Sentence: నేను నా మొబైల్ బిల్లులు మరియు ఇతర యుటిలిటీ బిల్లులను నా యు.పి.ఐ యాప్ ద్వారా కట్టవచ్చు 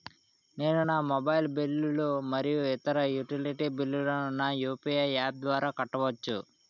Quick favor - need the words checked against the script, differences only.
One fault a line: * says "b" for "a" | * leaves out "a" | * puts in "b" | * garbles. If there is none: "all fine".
all fine